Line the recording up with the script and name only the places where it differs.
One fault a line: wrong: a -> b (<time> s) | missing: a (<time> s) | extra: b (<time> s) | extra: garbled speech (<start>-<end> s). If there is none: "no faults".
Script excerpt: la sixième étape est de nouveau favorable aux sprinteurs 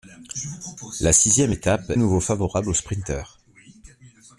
missing: est de (1.9 s)